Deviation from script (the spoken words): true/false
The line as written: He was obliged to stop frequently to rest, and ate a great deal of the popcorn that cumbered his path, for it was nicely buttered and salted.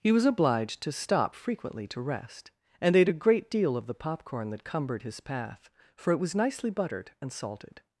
false